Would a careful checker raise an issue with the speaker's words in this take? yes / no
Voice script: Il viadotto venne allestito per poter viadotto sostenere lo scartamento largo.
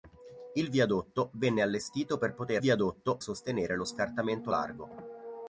no